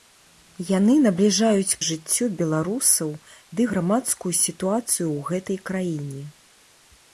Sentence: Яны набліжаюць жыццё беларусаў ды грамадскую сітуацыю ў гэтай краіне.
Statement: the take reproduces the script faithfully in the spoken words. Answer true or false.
true